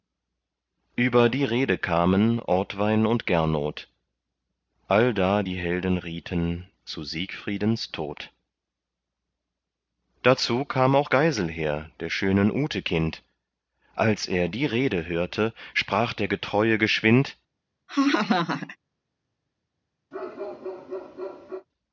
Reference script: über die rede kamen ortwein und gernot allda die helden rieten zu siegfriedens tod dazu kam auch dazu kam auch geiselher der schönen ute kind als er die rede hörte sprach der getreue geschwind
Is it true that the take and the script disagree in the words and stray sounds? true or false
true